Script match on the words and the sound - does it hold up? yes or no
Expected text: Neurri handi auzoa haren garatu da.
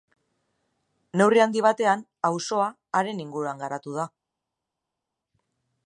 no